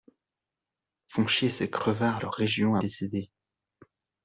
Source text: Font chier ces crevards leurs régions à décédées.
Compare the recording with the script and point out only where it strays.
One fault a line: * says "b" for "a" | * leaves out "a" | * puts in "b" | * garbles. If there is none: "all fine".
all fine